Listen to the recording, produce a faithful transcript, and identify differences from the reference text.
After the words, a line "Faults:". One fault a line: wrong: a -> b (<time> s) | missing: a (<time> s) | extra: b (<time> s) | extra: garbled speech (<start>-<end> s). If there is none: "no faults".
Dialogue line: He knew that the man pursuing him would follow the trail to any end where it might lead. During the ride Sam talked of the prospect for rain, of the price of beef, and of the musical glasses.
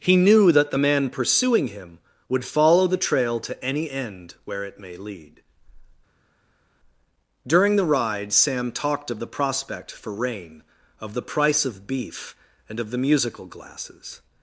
He knew that the man pursuing him would follow the trail to any end where it may lead. During the ride Sam talked of the prospect for rain, of the price of beef, and of the musical glasses.
Faults:
wrong: might -> may (4.8 s)